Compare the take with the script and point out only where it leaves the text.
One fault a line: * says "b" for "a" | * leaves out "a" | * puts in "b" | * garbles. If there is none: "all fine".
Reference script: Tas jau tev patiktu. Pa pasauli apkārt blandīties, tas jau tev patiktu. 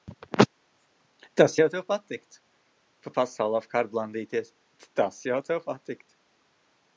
all fine